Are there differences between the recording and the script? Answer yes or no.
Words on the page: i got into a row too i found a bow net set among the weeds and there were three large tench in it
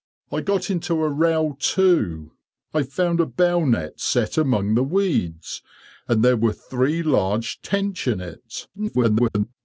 yes